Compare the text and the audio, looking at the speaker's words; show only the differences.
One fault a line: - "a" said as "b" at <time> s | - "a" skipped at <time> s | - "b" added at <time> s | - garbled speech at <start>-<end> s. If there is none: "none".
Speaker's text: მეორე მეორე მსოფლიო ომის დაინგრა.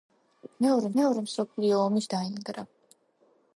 none